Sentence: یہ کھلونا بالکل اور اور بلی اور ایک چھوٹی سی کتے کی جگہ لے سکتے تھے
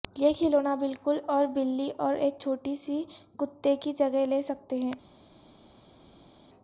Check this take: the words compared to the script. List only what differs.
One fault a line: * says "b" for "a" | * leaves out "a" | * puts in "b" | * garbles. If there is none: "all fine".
* leaves out "اور"
* says "ہیں" for "تھے"